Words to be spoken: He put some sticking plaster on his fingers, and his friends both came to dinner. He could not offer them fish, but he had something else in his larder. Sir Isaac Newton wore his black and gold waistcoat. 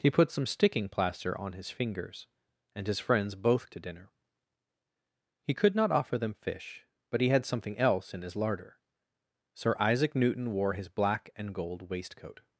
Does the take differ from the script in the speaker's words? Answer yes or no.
yes